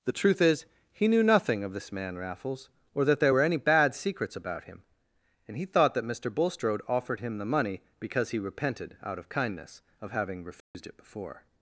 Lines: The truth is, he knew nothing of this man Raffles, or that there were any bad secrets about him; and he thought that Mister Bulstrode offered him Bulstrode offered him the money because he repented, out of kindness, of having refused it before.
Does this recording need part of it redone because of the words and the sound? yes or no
yes